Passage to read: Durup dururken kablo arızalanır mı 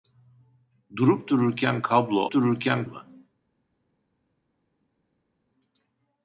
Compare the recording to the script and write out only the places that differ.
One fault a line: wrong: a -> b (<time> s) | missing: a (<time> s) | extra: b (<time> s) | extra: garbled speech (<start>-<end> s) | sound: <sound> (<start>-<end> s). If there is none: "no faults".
wrong: arızalanır -> dururken (2.3 s)